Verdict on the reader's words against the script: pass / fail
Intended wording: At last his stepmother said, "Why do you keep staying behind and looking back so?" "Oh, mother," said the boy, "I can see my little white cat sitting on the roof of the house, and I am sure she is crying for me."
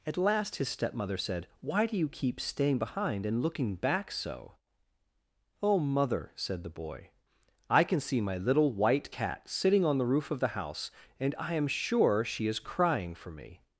pass